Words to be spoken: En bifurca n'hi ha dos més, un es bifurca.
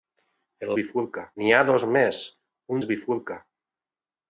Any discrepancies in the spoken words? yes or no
no